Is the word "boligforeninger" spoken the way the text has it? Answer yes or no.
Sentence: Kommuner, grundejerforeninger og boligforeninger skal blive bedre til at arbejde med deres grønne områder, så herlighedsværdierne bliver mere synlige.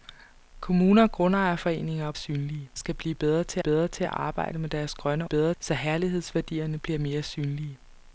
no